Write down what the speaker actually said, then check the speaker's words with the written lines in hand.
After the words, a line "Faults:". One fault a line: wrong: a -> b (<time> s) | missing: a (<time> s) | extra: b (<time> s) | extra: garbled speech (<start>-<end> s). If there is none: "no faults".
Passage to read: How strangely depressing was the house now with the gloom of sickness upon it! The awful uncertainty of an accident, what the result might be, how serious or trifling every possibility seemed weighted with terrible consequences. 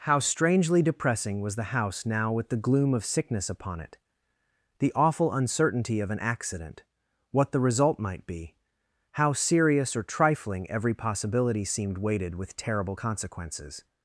How strangely depressing was the house now with the gloom of sickness upon it! The awful uncertainty of an accident, what the result might be, how serious or trifling every possibility seemed weighted with terrible consequences.
Faults:
no faults